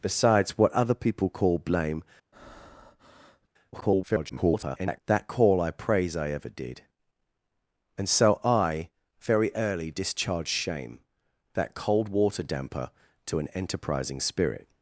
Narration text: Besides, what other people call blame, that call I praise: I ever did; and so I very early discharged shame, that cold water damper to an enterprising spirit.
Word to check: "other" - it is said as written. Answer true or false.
true